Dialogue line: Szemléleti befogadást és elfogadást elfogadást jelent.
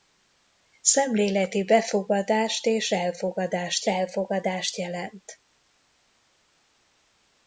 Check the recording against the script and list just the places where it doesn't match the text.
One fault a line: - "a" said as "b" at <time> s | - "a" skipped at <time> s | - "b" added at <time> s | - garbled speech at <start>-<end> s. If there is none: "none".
none